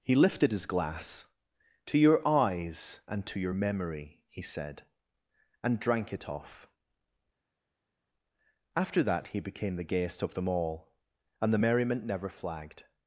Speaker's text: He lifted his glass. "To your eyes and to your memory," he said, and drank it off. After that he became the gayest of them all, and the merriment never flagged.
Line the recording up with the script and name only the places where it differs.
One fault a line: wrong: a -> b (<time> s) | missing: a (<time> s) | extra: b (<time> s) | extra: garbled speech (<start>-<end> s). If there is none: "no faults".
no faults